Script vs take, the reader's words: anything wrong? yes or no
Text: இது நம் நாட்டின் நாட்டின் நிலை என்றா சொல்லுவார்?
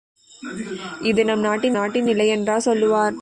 no